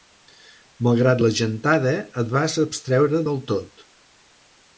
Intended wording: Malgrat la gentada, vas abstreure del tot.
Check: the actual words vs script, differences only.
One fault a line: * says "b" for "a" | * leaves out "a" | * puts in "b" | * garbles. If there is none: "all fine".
* puts in "et"